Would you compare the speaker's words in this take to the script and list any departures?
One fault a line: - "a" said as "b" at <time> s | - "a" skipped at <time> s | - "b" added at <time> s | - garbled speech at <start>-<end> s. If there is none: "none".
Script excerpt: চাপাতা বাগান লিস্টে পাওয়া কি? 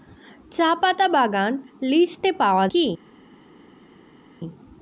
none